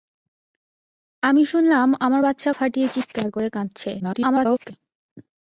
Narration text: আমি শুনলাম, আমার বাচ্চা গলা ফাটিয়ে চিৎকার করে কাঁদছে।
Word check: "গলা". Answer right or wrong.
wrong